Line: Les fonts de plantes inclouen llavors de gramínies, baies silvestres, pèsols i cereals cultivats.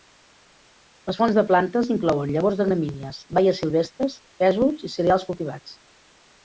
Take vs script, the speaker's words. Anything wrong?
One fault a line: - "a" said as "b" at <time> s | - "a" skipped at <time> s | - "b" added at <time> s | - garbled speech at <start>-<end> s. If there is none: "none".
none